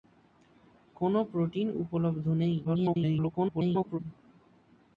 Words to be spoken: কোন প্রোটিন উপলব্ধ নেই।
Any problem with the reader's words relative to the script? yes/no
yes